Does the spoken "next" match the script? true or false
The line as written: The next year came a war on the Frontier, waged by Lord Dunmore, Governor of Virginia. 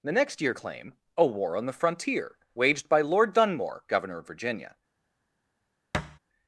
true